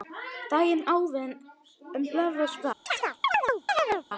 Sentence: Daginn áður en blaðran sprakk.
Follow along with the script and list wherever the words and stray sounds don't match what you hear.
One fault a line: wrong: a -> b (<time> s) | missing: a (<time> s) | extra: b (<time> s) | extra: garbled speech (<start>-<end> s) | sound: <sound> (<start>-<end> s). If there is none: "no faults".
sound: chirp (2.9-4.1 s)